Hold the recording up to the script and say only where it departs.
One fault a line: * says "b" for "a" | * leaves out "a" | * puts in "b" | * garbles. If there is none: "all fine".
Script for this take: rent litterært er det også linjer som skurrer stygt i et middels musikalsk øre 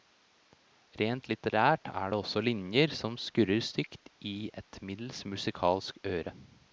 all fine